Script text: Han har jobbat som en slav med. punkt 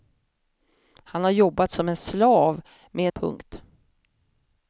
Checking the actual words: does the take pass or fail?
pass